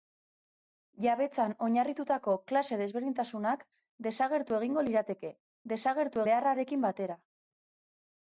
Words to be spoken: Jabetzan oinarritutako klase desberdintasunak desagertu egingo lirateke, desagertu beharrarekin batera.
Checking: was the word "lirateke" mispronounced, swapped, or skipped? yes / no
no